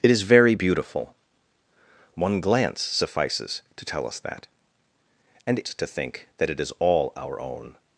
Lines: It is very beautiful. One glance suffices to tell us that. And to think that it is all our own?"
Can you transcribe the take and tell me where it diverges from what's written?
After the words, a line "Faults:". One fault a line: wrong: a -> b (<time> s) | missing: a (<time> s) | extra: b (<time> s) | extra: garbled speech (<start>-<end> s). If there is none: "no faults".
It is very beautiful. One glance suffices to tell us that. And to think that it is all our own?"
Faults:
no faults